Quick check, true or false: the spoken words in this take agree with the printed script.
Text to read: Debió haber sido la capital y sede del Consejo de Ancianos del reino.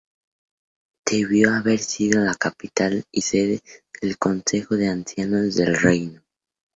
true